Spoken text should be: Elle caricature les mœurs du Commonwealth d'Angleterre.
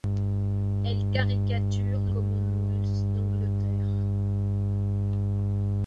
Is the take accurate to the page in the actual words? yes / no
no